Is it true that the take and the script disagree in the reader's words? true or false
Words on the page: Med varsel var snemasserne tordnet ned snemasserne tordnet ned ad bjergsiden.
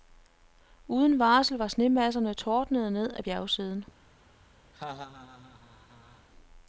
true